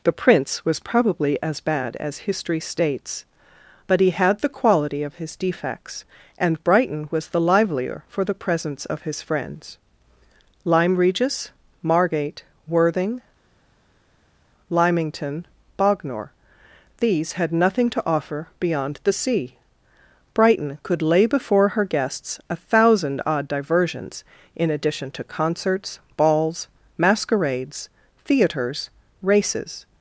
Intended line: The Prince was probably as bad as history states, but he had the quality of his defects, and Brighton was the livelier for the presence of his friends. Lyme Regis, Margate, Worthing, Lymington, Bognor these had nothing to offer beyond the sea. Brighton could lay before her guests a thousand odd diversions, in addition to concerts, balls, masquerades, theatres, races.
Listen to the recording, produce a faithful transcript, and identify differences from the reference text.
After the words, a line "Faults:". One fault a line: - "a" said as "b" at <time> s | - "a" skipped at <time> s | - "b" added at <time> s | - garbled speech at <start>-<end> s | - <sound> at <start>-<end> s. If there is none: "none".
The Prince was probably as bad as history states, but he had the quality of his defects, and Brighton was the livelier for the presence of his friends. Lyme Regis, Margate, Worthing, Lymington, Bognor these had nothing to offer beyond the sea. Brighton could lay before her guests a thousand odd diversions, in addition to concerts, balls, masquerades, theatres, races.
Faults:
none